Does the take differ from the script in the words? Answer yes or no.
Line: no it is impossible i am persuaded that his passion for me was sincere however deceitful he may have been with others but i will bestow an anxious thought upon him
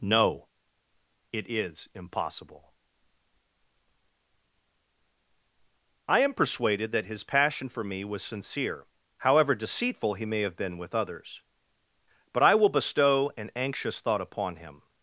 no